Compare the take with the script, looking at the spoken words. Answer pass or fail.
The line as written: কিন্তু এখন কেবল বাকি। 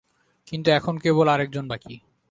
fail